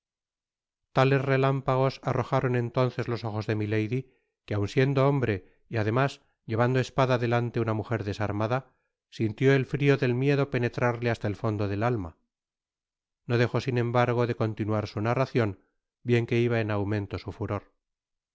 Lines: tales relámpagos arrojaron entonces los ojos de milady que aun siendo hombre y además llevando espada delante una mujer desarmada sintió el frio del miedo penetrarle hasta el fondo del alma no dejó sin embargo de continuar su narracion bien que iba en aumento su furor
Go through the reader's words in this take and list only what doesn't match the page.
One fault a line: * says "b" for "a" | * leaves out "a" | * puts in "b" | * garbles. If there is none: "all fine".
all fine